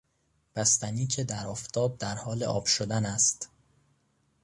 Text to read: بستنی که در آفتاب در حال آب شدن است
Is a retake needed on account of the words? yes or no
no